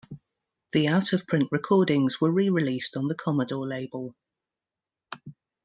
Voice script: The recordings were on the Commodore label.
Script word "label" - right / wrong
right